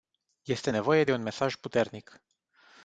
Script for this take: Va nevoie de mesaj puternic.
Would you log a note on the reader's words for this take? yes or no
yes